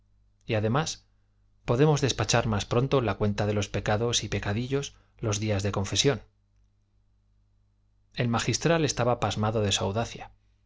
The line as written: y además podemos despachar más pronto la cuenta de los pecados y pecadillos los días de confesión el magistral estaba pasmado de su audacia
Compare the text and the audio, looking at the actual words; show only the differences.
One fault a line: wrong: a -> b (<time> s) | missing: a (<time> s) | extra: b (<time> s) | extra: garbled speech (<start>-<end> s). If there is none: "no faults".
no faults